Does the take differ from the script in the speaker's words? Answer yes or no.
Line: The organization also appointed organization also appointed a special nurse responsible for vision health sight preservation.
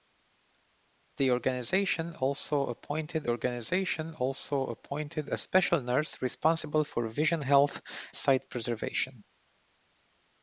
no